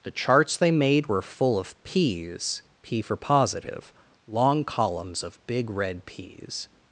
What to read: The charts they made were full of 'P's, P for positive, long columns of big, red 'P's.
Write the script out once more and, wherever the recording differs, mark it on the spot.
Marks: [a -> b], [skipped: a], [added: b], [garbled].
The charts they made were full of 'P's, P for positive, long columns of big, red 'P's.